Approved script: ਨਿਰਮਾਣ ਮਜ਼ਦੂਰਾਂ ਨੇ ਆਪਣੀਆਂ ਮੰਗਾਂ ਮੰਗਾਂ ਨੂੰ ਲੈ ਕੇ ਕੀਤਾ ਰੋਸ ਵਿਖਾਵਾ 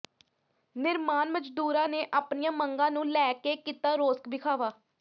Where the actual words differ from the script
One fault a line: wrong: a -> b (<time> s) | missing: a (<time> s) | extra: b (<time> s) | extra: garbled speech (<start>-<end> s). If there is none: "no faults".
missing: ਮੰਗਾਂ (2.9 s)